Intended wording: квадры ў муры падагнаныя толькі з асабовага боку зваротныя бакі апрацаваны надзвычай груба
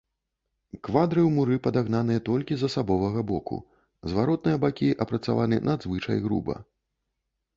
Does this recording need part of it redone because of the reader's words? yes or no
no